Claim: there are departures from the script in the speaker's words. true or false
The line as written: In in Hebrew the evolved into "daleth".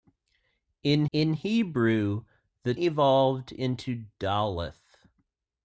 false